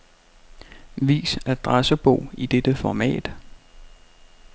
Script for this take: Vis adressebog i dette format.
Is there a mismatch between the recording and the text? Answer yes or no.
no